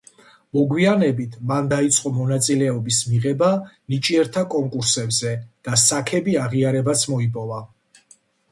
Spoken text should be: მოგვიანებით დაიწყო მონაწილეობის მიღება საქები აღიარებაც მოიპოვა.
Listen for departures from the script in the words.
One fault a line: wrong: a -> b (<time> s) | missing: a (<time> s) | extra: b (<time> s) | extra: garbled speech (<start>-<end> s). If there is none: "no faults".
extra: მან (1.5 s)
extra: ნიჭიერთა კონკურსებზე და (4.0 s)